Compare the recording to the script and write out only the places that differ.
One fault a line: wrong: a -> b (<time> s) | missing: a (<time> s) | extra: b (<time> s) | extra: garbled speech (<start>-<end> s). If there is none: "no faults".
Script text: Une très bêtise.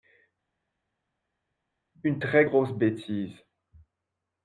extra: grosse (2.4 s)